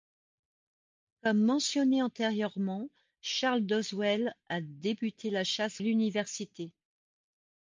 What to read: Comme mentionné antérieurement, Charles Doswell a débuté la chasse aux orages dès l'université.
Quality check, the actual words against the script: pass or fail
fail